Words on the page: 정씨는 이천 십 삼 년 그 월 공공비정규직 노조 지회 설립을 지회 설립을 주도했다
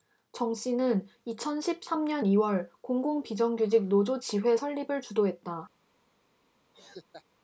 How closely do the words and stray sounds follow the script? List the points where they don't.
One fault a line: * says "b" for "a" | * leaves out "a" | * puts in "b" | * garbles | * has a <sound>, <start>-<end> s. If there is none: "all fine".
* says "이" for "그"
* leaves out "지회 설립을"
* has a laugh, 6.7-7.2 s